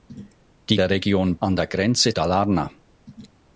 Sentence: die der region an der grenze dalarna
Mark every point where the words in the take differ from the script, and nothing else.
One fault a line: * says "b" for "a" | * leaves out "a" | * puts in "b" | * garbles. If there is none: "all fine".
all fine